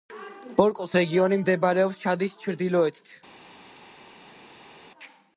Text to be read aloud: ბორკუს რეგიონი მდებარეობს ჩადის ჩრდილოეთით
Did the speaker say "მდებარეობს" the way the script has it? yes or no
yes